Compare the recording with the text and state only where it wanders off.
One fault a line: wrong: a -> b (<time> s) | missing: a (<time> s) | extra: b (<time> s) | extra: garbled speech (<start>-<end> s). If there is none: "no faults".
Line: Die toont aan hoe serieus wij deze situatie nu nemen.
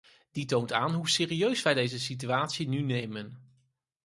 no faults